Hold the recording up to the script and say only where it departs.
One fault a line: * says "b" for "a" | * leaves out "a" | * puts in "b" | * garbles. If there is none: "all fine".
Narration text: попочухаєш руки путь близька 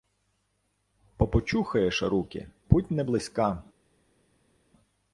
* puts in "не"